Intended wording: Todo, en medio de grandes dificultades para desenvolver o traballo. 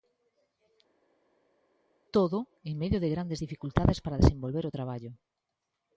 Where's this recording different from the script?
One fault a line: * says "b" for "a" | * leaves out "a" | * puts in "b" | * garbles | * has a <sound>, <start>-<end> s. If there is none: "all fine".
all fine